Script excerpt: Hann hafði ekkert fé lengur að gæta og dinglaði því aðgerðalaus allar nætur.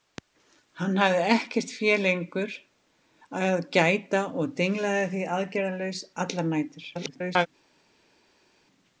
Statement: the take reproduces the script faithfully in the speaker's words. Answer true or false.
false